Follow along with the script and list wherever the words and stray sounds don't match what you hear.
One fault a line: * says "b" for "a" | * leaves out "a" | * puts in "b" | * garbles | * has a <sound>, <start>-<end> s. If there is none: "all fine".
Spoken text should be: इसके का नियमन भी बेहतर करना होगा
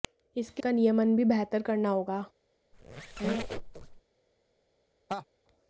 * has a squeak, 2.7-4.0 s
* has a laugh, 5.1-5.3 s